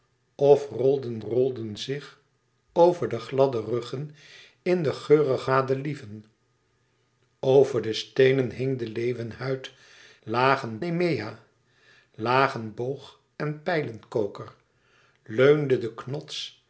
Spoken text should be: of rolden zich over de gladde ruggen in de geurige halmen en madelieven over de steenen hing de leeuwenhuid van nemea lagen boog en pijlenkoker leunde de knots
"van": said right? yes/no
no